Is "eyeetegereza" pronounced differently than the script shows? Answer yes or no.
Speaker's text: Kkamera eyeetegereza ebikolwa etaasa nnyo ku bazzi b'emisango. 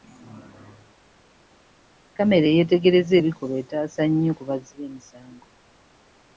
no